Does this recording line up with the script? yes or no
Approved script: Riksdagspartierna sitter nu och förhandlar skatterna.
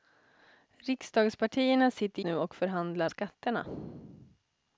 yes